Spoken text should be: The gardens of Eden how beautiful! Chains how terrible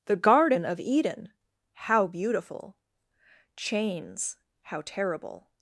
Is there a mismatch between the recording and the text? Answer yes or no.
yes